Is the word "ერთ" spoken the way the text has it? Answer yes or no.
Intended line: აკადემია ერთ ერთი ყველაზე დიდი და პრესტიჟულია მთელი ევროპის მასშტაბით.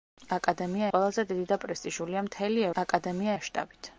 no